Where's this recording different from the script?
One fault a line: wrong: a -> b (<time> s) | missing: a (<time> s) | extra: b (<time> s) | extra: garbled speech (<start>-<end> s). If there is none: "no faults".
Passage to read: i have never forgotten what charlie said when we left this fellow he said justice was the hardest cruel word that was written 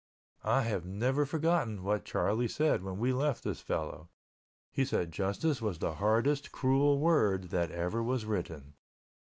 extra: ever (7.7 s)